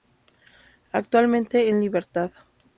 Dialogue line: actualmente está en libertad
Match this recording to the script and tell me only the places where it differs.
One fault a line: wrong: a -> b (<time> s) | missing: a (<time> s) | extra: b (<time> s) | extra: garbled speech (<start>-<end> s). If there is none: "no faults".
missing: está (1.7 s)